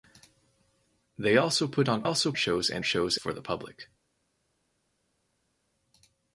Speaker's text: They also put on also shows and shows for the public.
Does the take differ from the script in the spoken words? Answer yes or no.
no